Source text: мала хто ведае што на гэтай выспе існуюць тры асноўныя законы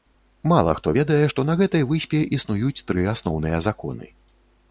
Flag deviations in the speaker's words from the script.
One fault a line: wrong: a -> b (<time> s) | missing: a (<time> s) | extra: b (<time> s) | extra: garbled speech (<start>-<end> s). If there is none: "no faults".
no faults